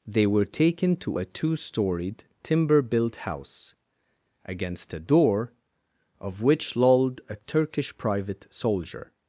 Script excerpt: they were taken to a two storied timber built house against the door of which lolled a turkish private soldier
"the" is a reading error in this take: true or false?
true